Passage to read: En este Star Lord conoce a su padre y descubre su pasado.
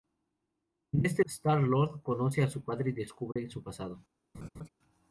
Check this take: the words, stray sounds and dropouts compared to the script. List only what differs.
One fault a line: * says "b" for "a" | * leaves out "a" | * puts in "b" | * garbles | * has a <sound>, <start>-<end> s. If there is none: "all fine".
* has a dropout, 3.3-3.4 s
* has a laugh, 4.3-4.7 s